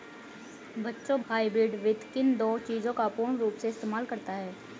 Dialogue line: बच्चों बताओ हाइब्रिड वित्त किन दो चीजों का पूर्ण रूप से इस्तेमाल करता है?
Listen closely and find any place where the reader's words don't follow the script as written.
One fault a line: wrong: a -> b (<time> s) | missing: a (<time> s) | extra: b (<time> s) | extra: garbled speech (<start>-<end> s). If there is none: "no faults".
missing: बताओ (1.2 s)